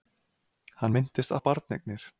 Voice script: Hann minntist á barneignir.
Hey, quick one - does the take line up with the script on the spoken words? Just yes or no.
yes